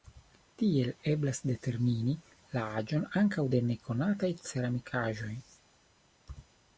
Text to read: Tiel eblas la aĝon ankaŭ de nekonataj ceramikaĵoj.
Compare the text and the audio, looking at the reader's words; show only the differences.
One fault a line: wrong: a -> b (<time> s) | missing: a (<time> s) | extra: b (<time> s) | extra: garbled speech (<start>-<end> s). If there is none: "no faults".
extra: determini (1.5 s)